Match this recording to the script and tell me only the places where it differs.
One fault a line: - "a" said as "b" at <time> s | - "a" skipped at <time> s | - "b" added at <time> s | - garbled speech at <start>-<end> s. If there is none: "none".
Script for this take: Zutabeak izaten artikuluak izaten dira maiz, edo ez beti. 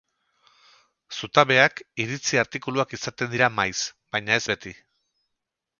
- "izaten" said as "iritzi" at 2.0 s
- "edo" said as "baina" at 4.2 s